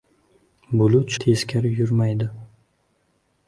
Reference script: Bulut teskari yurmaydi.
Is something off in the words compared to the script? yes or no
no